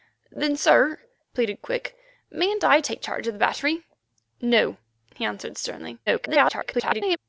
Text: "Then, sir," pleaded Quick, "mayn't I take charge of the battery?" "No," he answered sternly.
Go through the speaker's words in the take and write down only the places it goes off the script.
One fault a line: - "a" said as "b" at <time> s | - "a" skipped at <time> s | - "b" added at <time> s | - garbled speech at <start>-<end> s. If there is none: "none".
- garbled speech at 6.1-7.2 s